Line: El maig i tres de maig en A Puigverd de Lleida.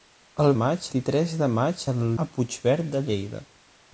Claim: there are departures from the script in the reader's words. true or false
false